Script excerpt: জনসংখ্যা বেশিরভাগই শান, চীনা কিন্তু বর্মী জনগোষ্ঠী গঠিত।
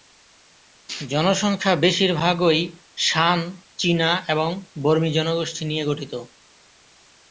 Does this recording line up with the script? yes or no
no